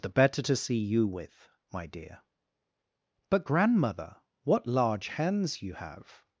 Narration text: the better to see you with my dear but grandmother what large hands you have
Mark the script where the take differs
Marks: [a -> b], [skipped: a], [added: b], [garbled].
the better to see you with my dear but grandmother what large hands you have